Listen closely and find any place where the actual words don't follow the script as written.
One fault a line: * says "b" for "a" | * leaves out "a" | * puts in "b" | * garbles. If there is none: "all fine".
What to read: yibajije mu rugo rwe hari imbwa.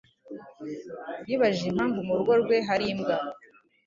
* puts in "impamvu"